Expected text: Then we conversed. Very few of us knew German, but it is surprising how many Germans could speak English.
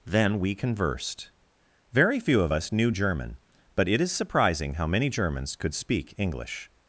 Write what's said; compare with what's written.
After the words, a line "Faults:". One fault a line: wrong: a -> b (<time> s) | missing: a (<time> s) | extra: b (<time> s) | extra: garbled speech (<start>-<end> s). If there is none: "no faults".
Then we conversed. Very few of us knew German, but it is surprising how many Germans could speak English.
Faults:
no faults